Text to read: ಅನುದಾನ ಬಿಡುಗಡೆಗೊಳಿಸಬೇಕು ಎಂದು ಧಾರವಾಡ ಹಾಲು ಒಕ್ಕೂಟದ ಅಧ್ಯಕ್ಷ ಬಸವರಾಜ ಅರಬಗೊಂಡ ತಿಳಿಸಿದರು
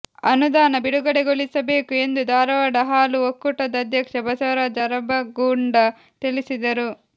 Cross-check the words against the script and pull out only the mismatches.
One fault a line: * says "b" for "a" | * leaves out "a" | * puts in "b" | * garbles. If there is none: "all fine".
all fine